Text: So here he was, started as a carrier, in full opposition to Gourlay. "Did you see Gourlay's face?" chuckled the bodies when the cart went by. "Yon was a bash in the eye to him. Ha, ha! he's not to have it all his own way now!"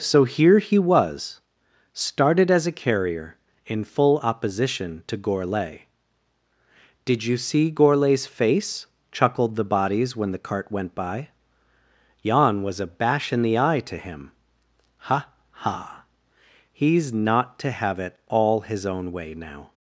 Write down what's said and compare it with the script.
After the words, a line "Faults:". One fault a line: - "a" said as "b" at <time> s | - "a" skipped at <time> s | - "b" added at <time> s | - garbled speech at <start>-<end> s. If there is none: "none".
So here he was, started as a carrier, in full opposition to Gourlay. "Did you see Gourlay's face?" chuckled the bodies when the cart went by. "Yon was a bash in the eye to him. Ha, ha! he's not to have it all his own way now!"
Faults:
none